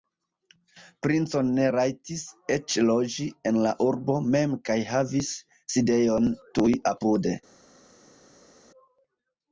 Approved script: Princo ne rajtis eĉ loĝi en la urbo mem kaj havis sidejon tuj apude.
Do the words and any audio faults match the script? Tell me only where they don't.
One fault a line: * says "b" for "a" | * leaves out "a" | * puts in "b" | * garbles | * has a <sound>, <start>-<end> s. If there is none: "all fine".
all fine